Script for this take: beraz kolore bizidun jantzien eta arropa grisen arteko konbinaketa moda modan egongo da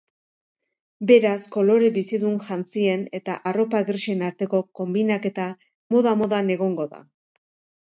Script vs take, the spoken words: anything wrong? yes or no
no